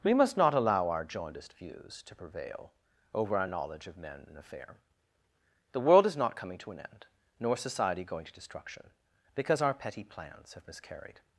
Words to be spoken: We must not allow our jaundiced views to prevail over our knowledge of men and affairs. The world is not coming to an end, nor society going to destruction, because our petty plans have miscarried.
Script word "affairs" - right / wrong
wrong